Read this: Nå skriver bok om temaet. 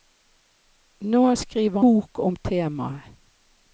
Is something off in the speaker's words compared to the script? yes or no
no